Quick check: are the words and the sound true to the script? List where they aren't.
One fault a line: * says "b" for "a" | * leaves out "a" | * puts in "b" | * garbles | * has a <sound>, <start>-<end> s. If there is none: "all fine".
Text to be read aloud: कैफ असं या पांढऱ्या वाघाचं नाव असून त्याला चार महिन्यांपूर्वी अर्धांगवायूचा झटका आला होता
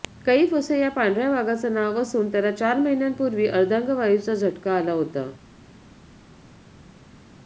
all fine